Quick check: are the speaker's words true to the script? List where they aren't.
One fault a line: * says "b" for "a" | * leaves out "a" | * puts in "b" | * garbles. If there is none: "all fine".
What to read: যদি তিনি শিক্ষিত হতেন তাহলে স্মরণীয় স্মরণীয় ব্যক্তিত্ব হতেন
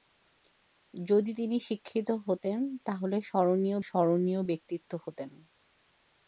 all fine